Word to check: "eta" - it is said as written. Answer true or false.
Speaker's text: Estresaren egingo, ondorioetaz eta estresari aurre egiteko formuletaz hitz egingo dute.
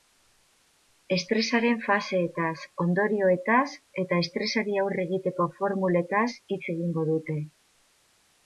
true